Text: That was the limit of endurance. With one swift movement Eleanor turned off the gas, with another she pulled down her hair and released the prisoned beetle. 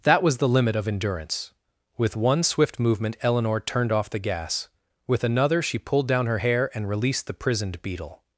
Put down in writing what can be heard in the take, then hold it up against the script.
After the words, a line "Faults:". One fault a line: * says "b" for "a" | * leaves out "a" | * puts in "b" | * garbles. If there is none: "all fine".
That was the limit of endurance. With one swift movement Eleanor turned off the gas, with another she pulled down her hair and released the prisoned beetle.
Faults:
all fine